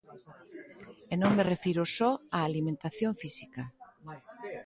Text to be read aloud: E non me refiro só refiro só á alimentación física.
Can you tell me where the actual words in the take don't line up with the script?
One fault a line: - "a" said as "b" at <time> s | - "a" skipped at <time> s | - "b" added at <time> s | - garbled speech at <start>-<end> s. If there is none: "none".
- "refiro só" skipped at 2.1 s